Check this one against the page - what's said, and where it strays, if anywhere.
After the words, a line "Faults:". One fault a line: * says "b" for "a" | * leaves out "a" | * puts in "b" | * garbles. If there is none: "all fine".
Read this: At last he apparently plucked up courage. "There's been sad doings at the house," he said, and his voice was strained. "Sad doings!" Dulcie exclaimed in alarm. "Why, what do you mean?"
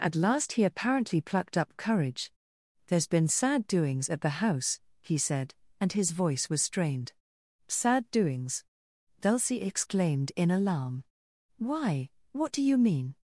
At last he apparently plucked up courage. "There's been sad doings at the house," he said, and his voice was strained. "Sad doings!" Dulcie exclaimed in alarm. "Why, what do you mean?"
Faults:
all fine